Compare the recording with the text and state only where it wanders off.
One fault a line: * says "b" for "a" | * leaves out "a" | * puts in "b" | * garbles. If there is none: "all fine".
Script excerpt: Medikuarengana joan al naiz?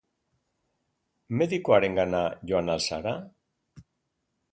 * says "zara" for "naiz"